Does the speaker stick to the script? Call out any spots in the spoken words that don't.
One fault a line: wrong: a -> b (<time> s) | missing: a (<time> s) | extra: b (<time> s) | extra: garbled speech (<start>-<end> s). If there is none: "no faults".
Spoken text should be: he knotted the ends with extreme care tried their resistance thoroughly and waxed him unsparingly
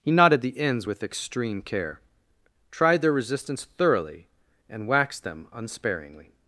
wrong: him -> them (5.2 s)